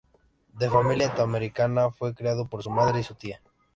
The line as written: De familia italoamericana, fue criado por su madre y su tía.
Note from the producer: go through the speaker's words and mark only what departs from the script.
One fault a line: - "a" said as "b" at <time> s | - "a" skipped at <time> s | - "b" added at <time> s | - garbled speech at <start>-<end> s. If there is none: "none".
none